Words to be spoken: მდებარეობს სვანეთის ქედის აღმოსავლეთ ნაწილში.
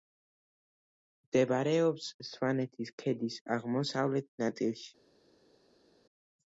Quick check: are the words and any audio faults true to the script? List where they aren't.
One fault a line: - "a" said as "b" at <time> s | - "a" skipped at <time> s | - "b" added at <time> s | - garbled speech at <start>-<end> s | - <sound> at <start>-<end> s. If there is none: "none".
none